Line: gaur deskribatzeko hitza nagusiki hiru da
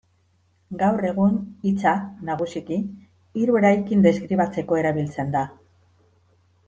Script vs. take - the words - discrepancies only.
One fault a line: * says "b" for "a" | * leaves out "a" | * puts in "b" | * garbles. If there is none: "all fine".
* says "egun" for "deskribatzeko"
* puts in "eraikin deskribatzeko erabiltzen"